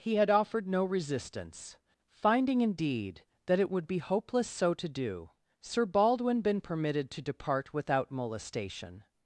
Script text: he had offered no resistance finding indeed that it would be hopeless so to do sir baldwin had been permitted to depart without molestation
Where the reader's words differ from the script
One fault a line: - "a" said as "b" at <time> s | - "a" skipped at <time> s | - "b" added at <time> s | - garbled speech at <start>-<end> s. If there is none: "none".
- "had" skipped at 6.4 s